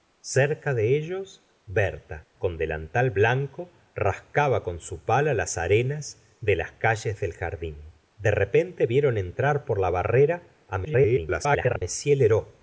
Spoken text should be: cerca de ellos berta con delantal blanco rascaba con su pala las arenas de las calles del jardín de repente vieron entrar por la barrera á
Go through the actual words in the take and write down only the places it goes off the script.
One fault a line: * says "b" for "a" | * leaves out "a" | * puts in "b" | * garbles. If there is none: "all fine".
* garbles